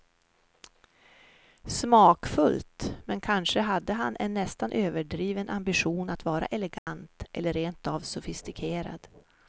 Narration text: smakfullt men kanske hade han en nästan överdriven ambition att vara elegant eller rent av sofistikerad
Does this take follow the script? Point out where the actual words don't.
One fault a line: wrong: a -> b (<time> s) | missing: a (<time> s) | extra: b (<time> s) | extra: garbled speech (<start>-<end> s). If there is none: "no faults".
no faults